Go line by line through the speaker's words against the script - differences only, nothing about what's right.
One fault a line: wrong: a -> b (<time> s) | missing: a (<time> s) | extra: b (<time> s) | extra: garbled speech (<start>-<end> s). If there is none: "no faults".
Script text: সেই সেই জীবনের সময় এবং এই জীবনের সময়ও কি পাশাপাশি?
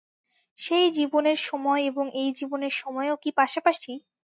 missing: সেই (0.9 s)